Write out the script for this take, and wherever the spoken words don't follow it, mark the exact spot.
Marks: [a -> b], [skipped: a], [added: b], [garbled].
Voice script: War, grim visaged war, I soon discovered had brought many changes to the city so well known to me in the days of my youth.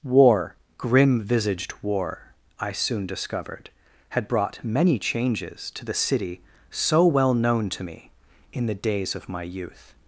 War, grim visaged war, I soon discovered had brought many changes to the city so well known to me in the days of my youth.